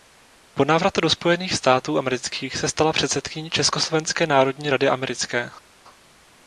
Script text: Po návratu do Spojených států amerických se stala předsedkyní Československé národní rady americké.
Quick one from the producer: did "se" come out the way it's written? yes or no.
yes